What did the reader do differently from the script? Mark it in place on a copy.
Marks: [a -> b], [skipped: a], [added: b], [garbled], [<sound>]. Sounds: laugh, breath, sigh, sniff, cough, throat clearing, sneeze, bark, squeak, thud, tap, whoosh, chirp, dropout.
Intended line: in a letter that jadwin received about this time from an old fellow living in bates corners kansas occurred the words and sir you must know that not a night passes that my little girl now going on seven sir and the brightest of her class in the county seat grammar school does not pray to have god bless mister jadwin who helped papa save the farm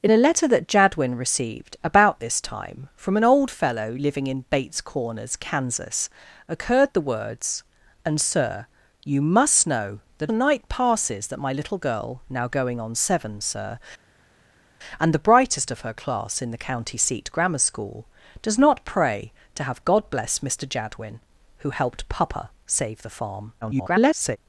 in a letter that jadwin received about this time from an old fellow living in bates corners kansas occurred the words and sir you must know that [skipped: not] a night passes that my little girl now going on seven sir and the brightest of her class in the county seat grammar school does not pray to have god bless mister jadwin who helped papa save the farm [garbled]